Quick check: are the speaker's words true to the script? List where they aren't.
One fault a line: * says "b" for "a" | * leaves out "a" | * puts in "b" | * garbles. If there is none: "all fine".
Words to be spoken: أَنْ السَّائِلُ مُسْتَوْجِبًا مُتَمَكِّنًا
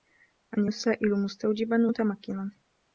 all fine